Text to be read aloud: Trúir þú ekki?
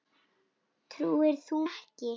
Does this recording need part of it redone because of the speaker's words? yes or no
no